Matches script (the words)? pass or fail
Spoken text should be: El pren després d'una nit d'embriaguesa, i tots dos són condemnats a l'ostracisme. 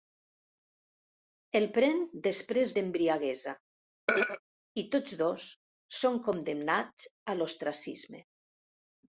fail